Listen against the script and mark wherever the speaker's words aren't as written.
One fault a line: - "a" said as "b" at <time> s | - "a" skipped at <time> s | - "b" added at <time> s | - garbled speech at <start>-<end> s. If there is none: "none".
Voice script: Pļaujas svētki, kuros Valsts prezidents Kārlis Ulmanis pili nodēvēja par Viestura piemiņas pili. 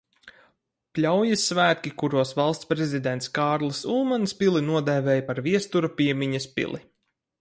none